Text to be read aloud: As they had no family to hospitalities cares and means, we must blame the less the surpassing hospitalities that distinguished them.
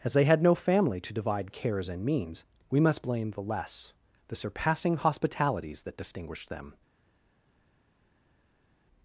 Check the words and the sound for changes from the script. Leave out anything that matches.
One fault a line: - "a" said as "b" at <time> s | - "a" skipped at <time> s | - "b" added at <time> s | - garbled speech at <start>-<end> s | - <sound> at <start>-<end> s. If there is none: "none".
- "hospitalities" said as "divide" at 1.1 s